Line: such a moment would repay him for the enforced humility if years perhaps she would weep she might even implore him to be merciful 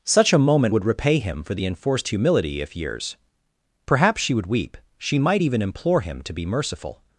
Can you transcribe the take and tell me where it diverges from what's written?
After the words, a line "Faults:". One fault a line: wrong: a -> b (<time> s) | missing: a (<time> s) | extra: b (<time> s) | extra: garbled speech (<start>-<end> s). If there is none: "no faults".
such a moment would repay him for the enforced humility if years perhaps she would weep she might even implore him to be merciful
Faults:
no faults